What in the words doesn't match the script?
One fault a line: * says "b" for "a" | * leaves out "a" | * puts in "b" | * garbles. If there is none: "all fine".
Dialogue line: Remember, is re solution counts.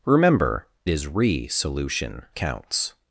all fine